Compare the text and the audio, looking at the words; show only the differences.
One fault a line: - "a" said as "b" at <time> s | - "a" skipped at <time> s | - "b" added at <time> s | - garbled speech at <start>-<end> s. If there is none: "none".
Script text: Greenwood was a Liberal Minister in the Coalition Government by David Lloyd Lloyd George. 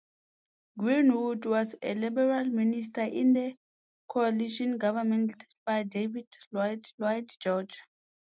none